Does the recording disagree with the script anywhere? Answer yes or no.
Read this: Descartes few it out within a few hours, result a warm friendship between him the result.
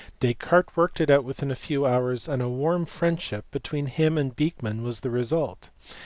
yes